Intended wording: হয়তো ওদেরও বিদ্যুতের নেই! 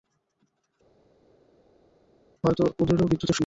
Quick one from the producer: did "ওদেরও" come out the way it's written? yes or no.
yes